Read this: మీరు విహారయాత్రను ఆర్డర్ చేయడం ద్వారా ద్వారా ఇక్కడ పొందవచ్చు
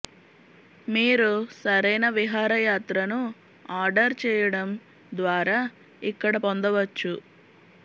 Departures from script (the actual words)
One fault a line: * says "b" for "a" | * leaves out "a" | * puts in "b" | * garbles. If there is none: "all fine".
* puts in "సరైన"
* leaves out "ద్వారా"